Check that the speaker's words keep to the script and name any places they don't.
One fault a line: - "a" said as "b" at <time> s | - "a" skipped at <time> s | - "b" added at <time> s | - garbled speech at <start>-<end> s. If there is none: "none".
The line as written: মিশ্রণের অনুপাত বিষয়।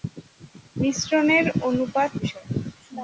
none